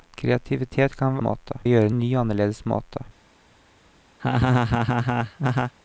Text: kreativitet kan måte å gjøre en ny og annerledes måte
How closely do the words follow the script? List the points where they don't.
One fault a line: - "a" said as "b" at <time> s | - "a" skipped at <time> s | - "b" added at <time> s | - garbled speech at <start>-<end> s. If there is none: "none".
none